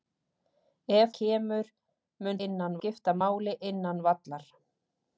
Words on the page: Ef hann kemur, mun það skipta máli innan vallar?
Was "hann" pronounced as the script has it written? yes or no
no